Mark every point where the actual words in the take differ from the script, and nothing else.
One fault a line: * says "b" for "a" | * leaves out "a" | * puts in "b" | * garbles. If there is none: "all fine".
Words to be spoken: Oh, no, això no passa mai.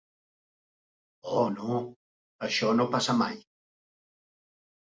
all fine